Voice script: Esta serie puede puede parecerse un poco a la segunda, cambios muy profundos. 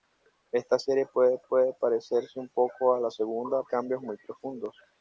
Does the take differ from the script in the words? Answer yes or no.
no